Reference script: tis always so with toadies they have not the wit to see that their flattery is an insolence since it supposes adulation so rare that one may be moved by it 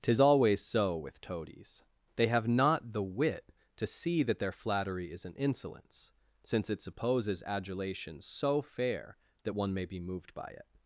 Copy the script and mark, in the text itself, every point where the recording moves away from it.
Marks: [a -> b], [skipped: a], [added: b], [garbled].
tis always so with toadies they have not the wit to see that their flattery is an insolence since it supposes adulation so [rare -> fair] that one may be moved by it